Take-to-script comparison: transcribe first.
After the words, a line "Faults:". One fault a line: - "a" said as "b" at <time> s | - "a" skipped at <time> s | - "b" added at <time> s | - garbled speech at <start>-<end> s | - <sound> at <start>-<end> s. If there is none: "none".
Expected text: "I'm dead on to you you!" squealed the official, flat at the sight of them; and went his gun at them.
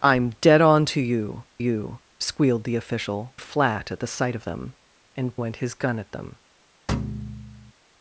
"I'm dead on to you you!" squealed the official, flat at the sight of them; and went his gun at them.
Faults:
- thud at 6.9-7.7 s